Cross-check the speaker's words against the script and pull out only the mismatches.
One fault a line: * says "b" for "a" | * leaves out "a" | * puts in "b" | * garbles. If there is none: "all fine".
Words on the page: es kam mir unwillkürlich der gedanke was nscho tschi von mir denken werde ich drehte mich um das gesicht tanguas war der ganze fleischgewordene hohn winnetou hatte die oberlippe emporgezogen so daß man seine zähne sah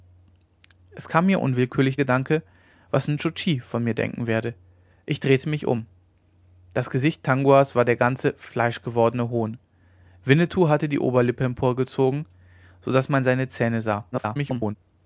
* leaves out "der"
* garbles